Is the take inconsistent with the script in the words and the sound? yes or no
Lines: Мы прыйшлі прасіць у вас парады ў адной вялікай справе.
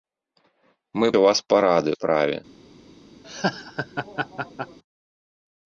yes